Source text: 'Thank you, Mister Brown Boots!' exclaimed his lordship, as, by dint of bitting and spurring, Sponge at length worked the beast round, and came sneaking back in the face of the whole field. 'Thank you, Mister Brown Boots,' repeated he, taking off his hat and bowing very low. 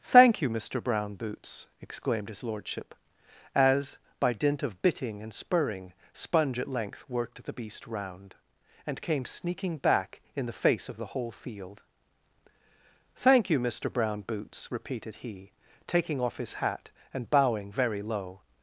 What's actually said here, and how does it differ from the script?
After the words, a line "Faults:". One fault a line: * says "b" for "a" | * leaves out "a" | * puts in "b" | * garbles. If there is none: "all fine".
'Thank you, Mister Brown Boots!' exclaimed his lordship, as, by dint of bitting and spurring, Sponge at length worked the beast round, and came sneaking back in the face of the whole field. 'Thank you, Mister Brown Boots,' repeated he, taking off his hat and bowing very low.
Faults:
all fine